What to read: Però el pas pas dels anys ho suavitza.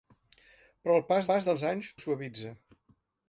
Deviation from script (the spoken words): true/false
false